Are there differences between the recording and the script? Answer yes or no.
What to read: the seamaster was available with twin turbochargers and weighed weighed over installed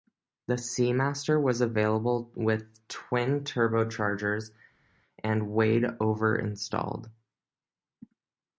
yes